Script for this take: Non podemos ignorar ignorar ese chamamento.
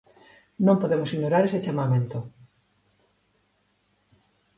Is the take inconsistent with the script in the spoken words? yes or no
yes